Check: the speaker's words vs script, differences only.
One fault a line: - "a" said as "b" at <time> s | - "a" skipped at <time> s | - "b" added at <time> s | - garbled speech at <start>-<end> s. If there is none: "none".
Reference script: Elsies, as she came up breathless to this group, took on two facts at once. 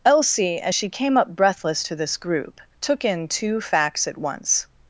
- "Elsies" said as "Elsie" at 0.0 s
- "on" said as "in" at 3.0 s